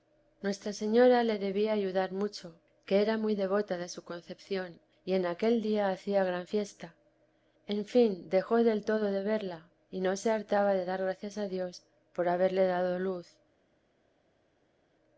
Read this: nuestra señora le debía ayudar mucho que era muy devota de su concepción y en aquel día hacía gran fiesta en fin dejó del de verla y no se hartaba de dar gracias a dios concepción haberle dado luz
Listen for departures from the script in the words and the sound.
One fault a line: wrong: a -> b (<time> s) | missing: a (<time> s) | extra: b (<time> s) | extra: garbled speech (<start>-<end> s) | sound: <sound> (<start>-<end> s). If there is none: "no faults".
extra: todo (8.8 s)
wrong: concepción -> por (12.1 s)